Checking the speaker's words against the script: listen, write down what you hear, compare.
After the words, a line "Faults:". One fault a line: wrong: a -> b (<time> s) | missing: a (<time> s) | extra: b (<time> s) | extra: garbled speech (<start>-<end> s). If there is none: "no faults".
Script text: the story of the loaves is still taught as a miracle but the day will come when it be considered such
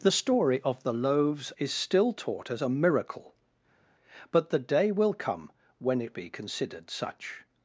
the story of the loaves is still taught as a miracle but the day will come when it be considered such
Faults:
no faults